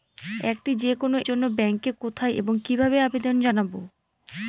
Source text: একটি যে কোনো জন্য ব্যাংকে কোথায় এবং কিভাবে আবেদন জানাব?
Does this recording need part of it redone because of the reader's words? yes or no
no